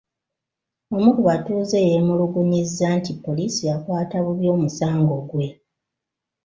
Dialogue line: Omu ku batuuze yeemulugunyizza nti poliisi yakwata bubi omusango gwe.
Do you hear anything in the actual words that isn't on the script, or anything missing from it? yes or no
no